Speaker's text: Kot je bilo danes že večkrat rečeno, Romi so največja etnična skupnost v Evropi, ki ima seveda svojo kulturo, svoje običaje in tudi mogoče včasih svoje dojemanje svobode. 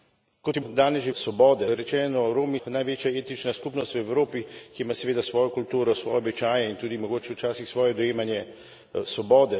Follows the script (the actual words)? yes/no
no